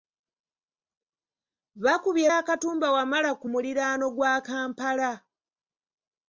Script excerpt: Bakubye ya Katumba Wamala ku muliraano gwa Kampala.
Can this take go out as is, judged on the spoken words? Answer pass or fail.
pass